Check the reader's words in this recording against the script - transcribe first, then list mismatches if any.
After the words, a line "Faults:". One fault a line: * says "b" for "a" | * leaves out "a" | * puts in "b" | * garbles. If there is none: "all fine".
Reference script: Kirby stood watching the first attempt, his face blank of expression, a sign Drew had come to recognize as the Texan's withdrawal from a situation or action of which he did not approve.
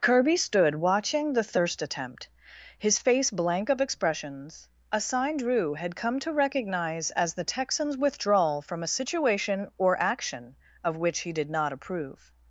Kirby stood watching the thirst attempt, his face blank of expressions, a sign Drew had come to recognize as the Texan's withdrawal from a situation or action of which he did not approve.
Faults:
* says "thirst" for "first"
* says "expressions" for "expression"